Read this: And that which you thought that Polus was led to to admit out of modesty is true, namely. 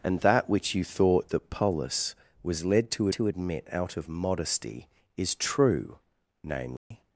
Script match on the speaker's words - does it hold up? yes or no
yes